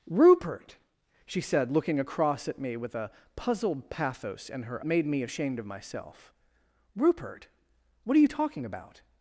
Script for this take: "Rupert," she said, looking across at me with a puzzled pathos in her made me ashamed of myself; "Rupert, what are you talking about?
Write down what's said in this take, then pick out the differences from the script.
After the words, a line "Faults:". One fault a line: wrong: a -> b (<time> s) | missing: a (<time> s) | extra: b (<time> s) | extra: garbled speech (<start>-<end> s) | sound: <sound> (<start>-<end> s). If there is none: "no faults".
"Rupert," she said, looking across at me with a puzzled pathos in her made me ashamed of myself; "Rupert, what are you talking about?
Faults:
no faults